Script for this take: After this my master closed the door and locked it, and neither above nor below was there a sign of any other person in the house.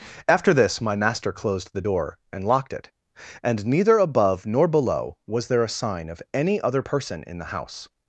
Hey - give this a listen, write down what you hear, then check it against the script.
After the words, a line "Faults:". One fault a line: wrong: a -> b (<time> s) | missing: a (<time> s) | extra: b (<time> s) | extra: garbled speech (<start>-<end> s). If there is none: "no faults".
After this my master closed the door and locked it, and neither above nor below was there a sign of any other person in the house.
Faults:
no faults